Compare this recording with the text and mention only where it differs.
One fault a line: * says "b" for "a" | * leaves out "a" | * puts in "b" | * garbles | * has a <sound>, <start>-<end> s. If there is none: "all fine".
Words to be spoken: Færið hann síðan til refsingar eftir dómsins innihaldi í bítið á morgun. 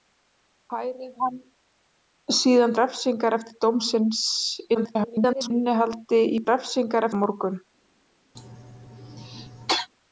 * leaves out "til"
* garbles
* says "refsingar" for "bítið"
* has a cough, 8.4-9.9 s